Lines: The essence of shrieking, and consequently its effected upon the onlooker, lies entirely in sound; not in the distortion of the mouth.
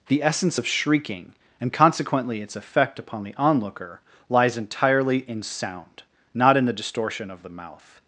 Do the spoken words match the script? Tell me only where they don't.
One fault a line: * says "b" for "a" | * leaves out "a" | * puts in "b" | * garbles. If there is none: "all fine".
* says "effect" for "effected"